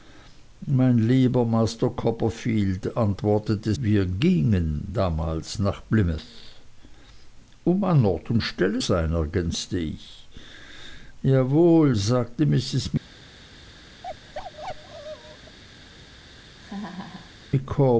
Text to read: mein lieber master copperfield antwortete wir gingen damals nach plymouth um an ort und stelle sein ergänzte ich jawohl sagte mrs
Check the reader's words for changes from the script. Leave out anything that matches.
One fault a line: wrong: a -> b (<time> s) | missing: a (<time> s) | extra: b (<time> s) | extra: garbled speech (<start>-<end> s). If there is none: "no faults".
no faults